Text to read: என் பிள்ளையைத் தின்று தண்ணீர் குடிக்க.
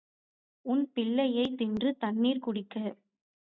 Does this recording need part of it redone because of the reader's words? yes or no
yes